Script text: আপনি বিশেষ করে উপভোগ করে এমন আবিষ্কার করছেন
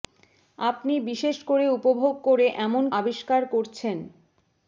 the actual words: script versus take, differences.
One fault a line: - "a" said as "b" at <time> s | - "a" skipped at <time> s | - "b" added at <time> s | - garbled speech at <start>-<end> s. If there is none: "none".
none